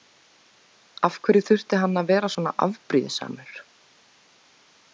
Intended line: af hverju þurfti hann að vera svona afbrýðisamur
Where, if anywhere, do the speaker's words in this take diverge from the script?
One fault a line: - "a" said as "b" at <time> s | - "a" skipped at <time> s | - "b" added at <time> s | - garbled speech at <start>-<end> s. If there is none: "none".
none